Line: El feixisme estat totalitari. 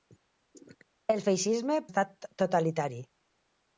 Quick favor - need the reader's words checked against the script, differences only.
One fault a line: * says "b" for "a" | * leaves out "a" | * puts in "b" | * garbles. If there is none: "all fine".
all fine